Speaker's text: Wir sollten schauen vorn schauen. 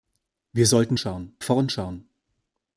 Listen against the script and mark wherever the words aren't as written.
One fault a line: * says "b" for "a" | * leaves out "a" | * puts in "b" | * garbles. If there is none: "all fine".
all fine